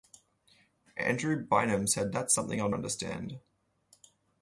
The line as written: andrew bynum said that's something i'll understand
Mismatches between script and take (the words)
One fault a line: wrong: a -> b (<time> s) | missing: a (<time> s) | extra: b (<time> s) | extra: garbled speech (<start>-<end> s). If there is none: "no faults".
no faults